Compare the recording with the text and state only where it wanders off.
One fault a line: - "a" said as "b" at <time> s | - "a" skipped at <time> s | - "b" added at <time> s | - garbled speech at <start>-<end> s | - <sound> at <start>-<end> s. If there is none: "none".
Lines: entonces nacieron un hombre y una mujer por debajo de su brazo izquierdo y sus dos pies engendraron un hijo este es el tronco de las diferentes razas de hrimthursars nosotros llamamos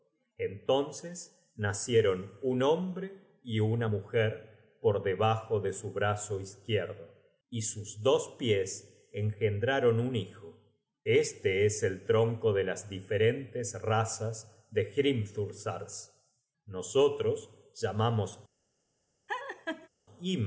- laugh at 19.3-19.9 s